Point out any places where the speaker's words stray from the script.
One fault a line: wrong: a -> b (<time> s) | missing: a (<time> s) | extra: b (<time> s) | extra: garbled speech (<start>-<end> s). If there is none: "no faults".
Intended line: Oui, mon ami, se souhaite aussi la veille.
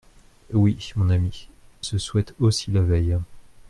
no faults